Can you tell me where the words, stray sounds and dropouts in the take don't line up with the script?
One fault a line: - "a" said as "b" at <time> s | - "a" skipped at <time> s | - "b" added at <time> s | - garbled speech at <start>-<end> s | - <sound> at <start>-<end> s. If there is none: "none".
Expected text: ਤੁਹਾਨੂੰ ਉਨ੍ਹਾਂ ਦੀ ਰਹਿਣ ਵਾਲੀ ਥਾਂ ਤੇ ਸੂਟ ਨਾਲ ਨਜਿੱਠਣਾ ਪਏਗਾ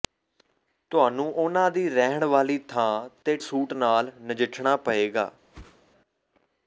- whoosh at 5.5-5.8 s